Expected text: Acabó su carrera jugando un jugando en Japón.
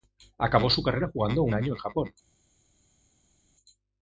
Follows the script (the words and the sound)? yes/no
no